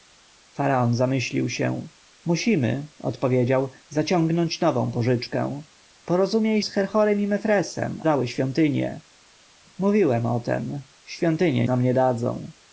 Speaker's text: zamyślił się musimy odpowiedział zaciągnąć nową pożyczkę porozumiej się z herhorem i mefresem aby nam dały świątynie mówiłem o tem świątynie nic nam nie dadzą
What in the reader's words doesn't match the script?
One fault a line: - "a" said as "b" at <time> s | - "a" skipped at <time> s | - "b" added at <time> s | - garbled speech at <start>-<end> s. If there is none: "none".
- "się" skipped at 6.6 s
- "aby nam" skipped at 8.0 s
- "nic" skipped at 11.7 s